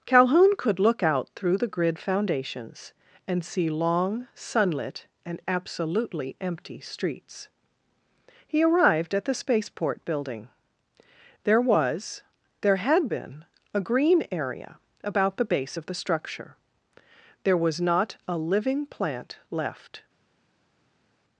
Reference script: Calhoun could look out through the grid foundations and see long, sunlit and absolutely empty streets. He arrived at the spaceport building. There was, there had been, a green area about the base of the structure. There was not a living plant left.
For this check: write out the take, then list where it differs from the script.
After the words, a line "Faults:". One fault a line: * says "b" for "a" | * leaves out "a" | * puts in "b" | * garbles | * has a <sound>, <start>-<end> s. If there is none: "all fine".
Calhoun could look out through the grid foundations and see long, sunlit and absolutely empty streets. He arrived at the spaceport building. There was, there had been, a green area about the base of the structure. There was not a living plant left.
Faults:
all fine